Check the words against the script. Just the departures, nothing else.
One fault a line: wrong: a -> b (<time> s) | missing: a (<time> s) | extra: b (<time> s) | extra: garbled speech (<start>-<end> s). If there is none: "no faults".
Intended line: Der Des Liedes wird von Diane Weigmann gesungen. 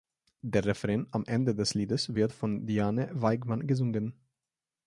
extra: Refrain am Ende (0.7 s)